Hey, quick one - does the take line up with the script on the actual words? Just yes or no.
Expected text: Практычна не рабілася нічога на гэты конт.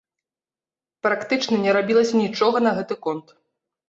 yes